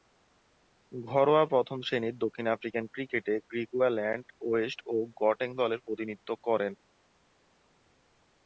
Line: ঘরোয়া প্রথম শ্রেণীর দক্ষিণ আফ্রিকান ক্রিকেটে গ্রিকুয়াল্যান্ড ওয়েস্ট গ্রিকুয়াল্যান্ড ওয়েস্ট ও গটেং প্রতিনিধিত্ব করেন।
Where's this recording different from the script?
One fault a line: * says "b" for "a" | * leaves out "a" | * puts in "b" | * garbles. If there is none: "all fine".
* leaves out "গ্রিকুয়াল্যান্ড ওয়েস্ট"
* puts in "দলের"